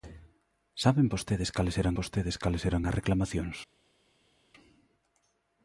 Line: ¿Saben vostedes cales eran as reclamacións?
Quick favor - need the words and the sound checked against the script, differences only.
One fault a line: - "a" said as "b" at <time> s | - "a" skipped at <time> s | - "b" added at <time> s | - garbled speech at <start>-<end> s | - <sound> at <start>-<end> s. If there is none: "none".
- "vostedes cales eran" added at 2.0 s